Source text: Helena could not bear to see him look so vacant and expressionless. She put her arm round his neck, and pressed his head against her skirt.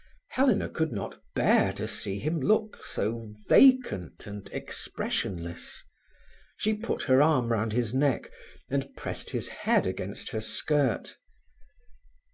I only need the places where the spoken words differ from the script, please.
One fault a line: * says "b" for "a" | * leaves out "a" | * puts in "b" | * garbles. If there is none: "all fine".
all fine